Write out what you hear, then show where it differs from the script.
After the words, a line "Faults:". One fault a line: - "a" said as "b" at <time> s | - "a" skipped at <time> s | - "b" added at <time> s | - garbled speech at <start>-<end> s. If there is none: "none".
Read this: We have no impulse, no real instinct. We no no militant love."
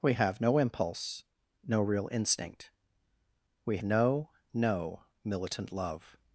We have no impulse, no real instinct. We no no militant love."
Faults:
none